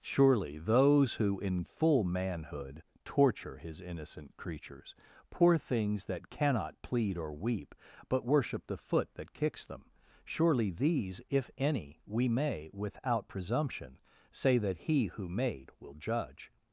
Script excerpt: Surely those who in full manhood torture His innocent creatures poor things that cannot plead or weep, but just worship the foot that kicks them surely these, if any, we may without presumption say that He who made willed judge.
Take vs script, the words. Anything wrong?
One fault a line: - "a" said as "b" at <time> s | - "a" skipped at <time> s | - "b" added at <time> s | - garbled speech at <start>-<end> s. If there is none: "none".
- "just" skipped at 8.2 s
- "willed" said as "will" at 15.8 s